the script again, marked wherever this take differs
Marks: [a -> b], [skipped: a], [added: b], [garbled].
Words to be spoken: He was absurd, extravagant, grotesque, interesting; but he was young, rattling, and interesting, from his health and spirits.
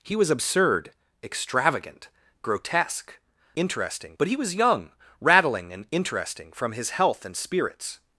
He was absurd, extravagant, grotesque, interesting; but he was young, rattling, and interesting, from his health and spirits.